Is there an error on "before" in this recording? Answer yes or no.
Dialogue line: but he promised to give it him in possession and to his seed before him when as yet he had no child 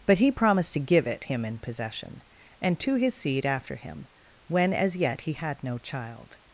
yes